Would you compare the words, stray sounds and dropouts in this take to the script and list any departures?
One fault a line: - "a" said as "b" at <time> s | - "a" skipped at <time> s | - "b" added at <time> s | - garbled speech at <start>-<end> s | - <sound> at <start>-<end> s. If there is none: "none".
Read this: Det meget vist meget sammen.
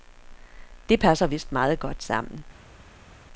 - "meget" said as "passer" at 1.0 s
- "godt" added at 1.8 s